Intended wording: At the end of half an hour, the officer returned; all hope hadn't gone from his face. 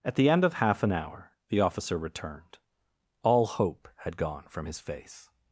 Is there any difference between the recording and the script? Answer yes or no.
yes